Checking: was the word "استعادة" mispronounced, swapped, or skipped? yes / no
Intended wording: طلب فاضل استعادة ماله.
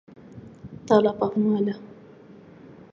yes